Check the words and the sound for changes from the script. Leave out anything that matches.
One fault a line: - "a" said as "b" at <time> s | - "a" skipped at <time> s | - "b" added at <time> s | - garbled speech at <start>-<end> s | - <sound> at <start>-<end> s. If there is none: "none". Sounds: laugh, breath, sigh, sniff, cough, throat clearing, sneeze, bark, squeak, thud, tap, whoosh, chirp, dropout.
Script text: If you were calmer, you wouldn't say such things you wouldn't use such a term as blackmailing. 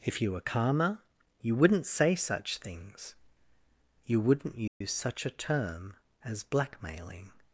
- dropout at 4.7-4.8 s